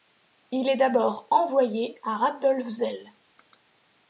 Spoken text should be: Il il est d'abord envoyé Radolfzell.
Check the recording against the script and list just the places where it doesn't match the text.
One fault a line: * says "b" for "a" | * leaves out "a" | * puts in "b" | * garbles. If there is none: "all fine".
* leaves out "il"
* puts in "à"